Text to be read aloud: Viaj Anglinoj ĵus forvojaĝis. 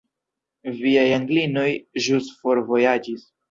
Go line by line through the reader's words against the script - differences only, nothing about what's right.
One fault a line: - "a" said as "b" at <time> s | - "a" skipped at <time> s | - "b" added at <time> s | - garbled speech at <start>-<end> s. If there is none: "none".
none